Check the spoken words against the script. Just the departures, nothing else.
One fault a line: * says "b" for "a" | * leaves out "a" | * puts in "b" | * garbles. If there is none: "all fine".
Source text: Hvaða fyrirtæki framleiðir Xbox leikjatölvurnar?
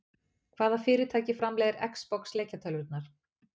all fine